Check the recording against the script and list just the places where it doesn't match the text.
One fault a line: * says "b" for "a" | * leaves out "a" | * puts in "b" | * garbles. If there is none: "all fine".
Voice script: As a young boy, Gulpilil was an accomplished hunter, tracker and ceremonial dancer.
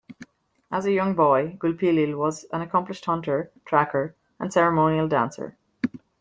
all fine